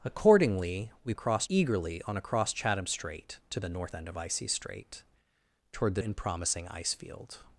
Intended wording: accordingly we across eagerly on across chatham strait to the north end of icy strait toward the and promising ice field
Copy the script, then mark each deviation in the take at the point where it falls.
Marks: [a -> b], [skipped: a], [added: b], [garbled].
accordingly we across eagerly on across chatham strait to the north end of icy strait toward the and promising ice field